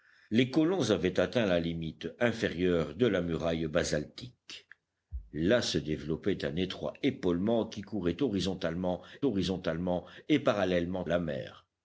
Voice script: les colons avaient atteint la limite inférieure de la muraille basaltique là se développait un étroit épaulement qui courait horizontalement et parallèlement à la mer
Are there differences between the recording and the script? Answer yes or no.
yes